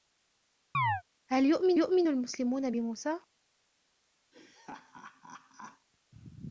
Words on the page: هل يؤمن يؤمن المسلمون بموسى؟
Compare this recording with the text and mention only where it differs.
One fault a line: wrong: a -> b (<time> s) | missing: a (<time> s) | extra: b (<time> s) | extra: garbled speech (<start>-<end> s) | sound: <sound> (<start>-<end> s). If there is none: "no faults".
sound: chirp (0.7-1.0 s)
sound: laugh (4.3-5.9 s)